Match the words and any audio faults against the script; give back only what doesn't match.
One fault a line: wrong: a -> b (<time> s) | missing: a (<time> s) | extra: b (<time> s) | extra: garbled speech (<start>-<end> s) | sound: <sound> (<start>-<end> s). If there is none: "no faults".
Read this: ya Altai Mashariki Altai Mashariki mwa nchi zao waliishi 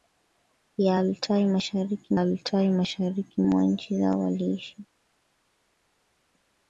no faults